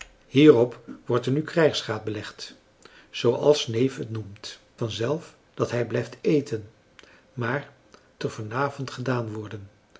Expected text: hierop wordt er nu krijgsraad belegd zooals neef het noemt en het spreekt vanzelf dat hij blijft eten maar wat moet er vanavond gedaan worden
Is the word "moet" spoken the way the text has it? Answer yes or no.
no